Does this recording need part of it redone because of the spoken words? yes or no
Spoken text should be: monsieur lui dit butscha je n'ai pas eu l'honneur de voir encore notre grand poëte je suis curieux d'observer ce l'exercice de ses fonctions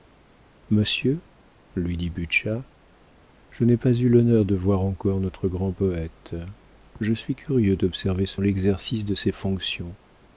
no